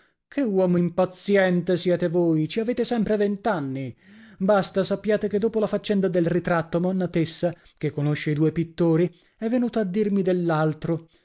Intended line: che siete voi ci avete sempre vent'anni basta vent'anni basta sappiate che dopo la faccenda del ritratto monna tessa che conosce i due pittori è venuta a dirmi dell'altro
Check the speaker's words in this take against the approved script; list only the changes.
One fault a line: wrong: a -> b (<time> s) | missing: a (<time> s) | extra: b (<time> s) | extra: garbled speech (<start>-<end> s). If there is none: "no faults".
extra: uomo impaziente (0.4 s)
missing: vent'anni basta (4.8 s)